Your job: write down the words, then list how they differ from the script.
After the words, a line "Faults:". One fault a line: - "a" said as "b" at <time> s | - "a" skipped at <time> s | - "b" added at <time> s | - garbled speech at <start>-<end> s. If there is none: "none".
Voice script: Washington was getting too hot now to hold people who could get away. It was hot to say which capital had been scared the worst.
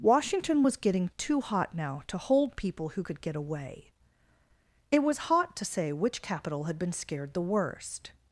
Washington was getting too hot now to hold people who could get away. It was hot to say which capital had been scared the worst.
Faults:
none